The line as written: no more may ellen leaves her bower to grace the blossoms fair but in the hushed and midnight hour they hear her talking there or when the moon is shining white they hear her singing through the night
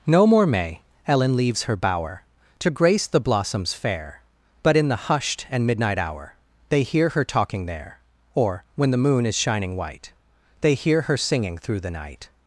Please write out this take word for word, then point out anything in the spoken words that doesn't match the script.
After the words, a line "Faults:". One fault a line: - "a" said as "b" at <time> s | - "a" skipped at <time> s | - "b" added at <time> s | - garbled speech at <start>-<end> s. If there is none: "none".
no more may ellen leaves her bower to grace the blossoms fair but in the hushed and midnight hour they hear her talking there or when the moon is shining white they hear her singing through the night
Faults:
none